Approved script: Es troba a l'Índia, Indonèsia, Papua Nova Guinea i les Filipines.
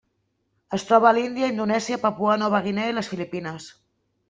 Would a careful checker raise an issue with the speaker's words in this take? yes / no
no